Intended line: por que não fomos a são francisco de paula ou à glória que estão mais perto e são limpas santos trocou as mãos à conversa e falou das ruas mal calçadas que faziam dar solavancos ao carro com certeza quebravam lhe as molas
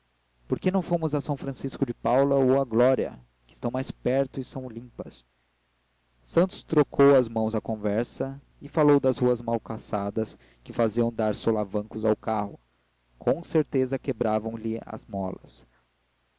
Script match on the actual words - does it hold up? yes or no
yes